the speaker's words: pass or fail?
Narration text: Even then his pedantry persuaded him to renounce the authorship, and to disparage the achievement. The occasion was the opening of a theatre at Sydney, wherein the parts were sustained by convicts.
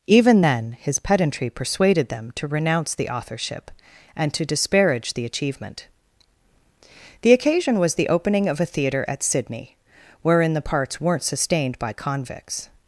fail